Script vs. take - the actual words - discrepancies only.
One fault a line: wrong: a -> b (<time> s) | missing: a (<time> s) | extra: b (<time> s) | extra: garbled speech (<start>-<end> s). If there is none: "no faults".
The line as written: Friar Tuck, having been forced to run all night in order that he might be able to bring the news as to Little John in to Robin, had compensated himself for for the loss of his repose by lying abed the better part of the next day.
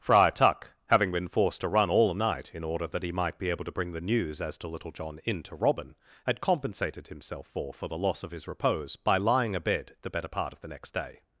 no faults